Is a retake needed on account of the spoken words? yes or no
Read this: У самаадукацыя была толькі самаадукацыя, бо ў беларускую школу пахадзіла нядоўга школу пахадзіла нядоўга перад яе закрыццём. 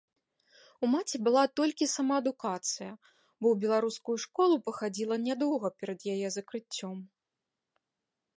yes